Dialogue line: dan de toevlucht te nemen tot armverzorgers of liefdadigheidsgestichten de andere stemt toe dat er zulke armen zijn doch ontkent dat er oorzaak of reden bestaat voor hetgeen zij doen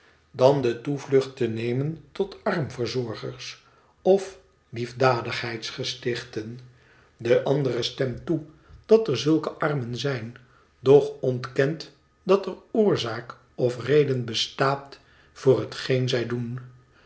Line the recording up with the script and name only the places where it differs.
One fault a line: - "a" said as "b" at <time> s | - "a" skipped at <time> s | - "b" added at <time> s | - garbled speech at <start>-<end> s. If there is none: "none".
none